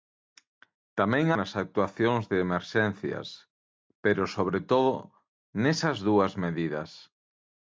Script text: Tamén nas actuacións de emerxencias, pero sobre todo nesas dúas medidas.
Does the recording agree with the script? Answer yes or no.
yes